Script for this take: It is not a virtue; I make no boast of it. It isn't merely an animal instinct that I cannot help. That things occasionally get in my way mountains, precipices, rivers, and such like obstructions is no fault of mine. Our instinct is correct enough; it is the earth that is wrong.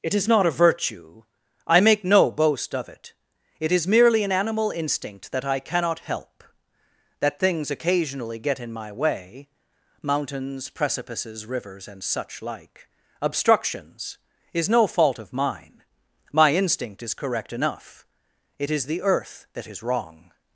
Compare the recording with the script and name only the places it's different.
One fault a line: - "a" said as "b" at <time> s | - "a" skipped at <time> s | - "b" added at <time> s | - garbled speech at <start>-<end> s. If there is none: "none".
- "isn't" said as "is" at 3.7 s
- "Our" said as "My" at 16.3 s